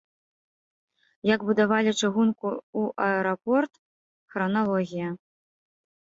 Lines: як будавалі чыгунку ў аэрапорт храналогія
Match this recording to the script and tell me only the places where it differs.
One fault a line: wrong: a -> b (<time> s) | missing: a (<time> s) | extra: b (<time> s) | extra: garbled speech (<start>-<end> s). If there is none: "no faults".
no faults